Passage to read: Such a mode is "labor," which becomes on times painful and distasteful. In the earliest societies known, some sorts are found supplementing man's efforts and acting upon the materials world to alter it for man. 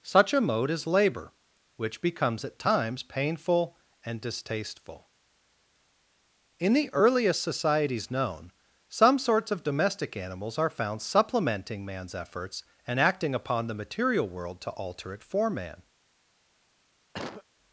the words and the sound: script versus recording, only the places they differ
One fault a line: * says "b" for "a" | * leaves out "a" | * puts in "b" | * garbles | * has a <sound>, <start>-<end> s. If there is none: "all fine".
* says "at" for "on"
* puts in "of domestic animals"
* says "material" for "materials"
* has a cough, 17.1-17.4 s